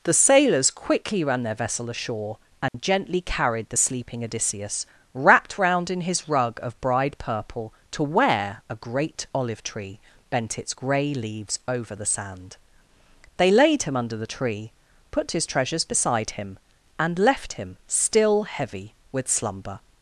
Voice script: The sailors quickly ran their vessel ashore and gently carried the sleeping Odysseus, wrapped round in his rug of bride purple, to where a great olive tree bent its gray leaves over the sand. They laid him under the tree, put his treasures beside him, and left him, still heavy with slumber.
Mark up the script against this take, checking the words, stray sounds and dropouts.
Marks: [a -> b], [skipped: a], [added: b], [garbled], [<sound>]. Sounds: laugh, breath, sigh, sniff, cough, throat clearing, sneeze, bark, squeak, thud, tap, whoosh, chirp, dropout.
The sailors quickly ran their vessel ashore and [dropout] gently carried the sleeping Odysseus, wrapped round in his rug of bride purple, to where a great olive tree bent its gray leaves over the sand. They laid him under the tree, put his treasures beside him, and left him, still heavy with slumber.